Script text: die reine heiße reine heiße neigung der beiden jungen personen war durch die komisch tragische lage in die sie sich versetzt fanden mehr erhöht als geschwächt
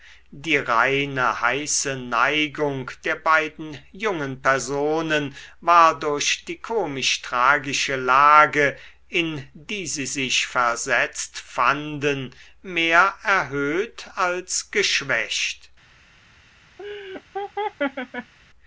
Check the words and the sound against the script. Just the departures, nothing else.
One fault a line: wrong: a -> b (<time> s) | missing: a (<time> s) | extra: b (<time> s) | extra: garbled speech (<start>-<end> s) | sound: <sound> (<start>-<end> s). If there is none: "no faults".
missing: reine heiße (1.9 s)
sound: laugh (16.8-18.3 s)